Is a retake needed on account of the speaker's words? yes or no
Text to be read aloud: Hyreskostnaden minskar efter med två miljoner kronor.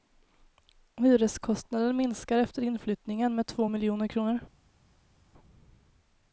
yes